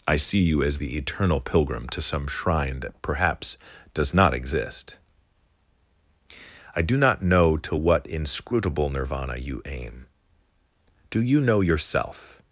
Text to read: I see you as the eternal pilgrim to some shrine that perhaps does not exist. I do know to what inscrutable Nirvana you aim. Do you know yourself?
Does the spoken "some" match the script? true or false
true